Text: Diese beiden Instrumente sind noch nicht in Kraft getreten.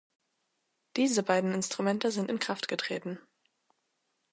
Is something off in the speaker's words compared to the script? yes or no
yes